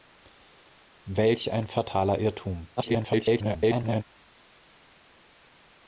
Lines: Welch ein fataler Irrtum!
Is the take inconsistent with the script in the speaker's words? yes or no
yes